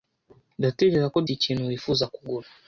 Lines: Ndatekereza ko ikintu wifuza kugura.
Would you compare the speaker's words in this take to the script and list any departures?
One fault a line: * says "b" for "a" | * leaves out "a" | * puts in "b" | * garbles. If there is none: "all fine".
all fine